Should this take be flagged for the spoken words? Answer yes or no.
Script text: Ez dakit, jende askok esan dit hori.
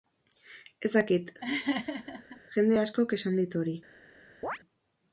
no